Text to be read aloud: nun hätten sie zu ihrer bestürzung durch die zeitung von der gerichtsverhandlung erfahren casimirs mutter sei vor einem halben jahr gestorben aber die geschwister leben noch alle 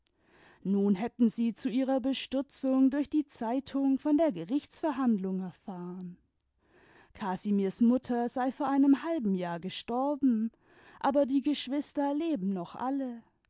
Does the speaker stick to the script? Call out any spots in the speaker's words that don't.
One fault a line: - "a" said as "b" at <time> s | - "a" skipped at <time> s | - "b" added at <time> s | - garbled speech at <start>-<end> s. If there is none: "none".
none